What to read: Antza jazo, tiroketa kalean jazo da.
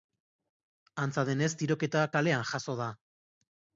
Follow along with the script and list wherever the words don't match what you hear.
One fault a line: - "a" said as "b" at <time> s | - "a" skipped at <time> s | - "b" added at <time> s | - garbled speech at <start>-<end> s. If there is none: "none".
- "jazo" said as "denez" at 1.3 s